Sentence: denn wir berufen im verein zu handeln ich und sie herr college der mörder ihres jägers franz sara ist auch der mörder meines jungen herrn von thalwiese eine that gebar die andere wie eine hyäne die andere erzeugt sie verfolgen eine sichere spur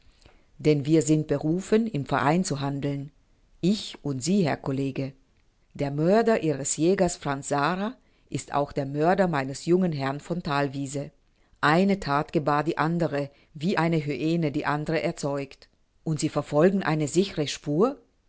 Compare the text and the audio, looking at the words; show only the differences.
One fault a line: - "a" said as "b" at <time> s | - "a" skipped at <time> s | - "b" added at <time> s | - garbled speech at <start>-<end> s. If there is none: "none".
- "sind" added at 1.0 s
- "und" added at 16.0 s